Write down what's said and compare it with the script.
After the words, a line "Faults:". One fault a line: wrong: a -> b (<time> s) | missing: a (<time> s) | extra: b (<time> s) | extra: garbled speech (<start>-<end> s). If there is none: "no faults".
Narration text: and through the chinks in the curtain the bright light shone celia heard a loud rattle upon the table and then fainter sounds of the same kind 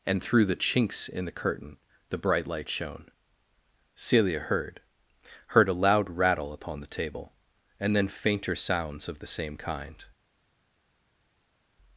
and through the chinks in the curtain the bright light shone celia heard heard a loud rattle upon the table and then fainter sounds of the same kind
Faults:
extra: heard (5.5 s)